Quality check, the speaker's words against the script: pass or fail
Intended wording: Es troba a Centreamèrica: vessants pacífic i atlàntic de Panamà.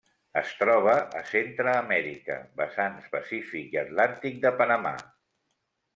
pass